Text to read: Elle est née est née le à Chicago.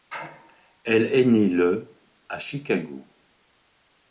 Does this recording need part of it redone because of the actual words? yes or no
yes